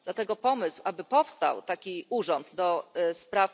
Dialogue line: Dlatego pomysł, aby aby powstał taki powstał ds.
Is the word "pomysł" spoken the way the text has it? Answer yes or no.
yes